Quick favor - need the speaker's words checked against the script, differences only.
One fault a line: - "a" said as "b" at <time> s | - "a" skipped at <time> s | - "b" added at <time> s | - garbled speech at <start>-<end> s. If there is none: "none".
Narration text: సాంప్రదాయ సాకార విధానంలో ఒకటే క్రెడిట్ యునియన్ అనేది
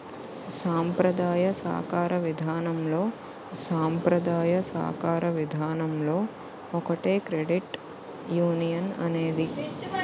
- "సాంప్రదాయ సాకార విధానంలో" added at 3.6 s